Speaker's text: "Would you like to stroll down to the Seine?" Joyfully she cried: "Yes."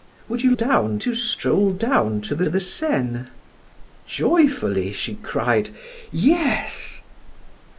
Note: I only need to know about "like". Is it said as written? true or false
false